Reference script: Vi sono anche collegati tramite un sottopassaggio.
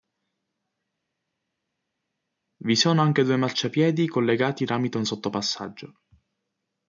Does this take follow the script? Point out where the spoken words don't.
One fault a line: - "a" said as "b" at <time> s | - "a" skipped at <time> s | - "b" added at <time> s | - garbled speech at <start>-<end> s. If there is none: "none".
- "due marciapiedi" added at 3.2 s